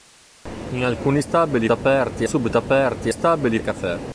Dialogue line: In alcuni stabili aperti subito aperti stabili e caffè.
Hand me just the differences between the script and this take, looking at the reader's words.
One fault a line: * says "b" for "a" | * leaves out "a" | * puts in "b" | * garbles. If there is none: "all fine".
all fine